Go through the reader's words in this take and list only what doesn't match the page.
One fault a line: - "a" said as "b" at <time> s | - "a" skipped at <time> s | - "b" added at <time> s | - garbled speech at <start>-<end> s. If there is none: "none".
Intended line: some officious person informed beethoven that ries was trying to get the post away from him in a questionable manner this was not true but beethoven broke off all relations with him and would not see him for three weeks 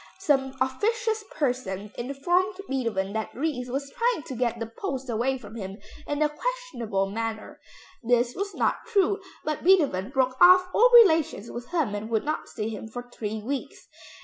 none